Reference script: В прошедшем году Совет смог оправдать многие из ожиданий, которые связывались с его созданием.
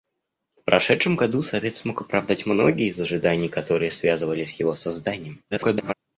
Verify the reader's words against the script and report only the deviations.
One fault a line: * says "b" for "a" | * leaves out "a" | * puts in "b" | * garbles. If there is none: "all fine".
* garbles